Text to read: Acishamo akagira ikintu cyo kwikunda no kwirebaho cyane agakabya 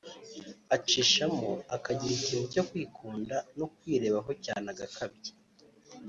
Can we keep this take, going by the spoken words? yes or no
yes